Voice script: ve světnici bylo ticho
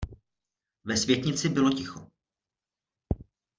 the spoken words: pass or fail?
pass